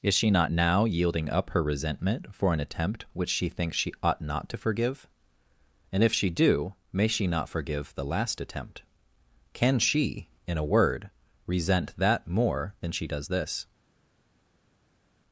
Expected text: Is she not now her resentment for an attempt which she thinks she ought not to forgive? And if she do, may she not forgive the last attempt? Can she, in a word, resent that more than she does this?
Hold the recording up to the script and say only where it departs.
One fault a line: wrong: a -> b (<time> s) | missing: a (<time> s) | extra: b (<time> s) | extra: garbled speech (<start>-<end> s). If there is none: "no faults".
extra: yielding up (0.8 s)